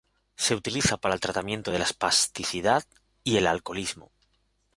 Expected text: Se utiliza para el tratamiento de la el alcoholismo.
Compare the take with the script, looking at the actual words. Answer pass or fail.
fail